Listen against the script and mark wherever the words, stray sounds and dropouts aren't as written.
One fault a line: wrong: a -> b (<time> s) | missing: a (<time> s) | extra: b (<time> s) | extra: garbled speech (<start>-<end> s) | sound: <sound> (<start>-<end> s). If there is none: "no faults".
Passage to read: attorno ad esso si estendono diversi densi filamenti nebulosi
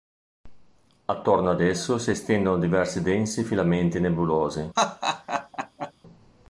sound: laugh (4.8-5.9 s)